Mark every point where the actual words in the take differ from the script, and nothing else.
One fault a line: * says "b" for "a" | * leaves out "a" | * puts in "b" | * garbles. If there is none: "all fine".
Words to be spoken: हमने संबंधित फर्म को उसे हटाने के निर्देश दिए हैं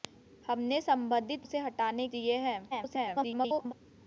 * leaves out "फर्म को"
* leaves out "के निर्देश"
* garbles